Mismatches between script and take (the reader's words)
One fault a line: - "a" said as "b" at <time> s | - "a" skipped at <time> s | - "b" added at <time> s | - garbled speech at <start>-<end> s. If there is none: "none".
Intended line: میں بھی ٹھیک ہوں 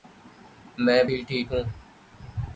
none